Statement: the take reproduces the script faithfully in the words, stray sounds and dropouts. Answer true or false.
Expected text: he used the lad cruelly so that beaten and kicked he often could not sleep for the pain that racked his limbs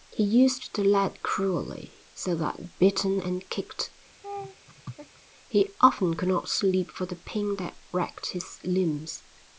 false